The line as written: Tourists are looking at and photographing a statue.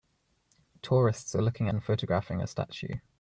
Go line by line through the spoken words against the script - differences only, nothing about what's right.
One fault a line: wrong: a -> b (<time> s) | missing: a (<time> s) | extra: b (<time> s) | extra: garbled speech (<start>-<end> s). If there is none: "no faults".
missing: at (1.7 s)